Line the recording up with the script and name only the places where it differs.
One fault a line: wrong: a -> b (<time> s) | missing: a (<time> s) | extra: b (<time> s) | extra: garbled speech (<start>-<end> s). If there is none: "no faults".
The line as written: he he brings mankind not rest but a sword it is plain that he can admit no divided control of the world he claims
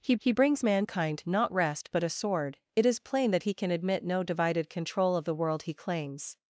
no faults